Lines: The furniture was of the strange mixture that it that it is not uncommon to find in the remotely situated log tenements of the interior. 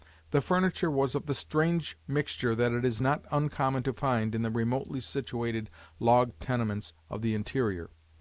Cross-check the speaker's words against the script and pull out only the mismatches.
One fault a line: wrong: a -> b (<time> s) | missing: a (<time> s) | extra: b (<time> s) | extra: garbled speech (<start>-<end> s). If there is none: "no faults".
missing: that it (2.8 s)